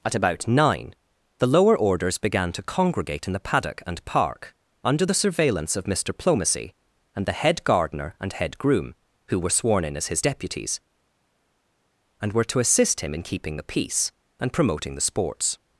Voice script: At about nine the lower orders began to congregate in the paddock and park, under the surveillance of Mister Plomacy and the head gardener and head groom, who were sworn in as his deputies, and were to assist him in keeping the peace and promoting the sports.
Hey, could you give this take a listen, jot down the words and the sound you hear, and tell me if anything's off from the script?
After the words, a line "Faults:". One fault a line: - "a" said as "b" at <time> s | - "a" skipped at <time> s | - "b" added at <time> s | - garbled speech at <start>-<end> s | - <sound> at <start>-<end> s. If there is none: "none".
At about nine the lower orders began to congregate in the paddock and park, under the surveillance of Mister Plomacy and the head gardener and head groom, who were sworn in as his deputies, and were to assist him in keeping the peace and promoting the sports.
Faults:
none